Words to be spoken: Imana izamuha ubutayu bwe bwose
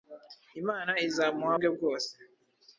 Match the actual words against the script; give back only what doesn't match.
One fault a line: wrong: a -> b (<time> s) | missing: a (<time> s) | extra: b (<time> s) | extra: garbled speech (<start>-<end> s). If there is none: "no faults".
missing: ubutayu (1.6 s)